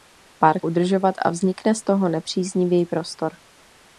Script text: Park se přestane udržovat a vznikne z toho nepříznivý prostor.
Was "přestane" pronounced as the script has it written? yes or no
no